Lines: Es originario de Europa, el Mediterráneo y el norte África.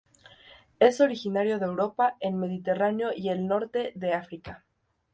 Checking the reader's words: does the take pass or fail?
fail